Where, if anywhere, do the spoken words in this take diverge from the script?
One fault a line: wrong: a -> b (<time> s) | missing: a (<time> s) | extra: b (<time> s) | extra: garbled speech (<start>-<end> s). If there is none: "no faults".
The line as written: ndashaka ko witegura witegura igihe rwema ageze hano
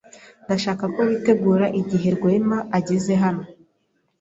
missing: witegura (1.6 s)